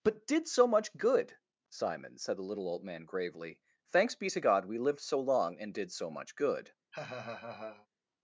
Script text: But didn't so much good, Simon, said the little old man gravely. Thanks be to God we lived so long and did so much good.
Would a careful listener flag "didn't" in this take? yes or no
yes